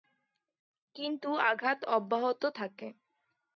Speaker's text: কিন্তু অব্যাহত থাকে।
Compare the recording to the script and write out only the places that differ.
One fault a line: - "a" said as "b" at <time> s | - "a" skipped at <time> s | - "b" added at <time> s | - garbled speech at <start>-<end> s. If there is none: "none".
- "আঘাত" added at 1.5 s